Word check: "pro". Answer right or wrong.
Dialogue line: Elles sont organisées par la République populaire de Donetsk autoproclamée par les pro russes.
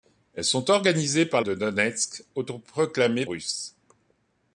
wrong